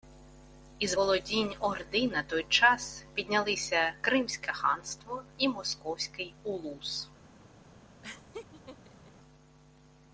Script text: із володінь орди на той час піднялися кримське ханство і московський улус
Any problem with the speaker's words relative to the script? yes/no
no